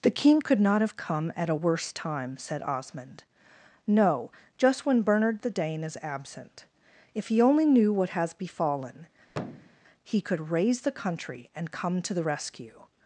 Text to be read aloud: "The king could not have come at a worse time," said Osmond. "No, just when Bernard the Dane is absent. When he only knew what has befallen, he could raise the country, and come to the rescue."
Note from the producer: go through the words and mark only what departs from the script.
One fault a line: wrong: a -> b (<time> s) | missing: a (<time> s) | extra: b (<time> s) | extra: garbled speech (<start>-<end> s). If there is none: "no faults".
wrong: When -> If (7.1 s)